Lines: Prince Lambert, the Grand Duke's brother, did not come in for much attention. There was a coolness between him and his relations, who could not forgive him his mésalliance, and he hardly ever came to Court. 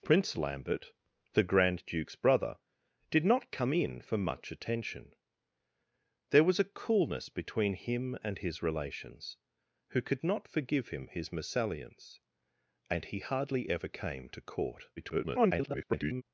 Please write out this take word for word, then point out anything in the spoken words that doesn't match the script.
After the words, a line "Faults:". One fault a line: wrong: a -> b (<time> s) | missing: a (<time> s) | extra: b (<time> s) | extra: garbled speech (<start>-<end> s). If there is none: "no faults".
Prince Lambert, the Grand Duke's brother, did not come in for much attention. There was a coolness between him and his relations, who could not forgive him his mésalliance, and he hardly ever came to Court. [garbled]
Faults:
extra: garbled speech (15.0-16.2 s)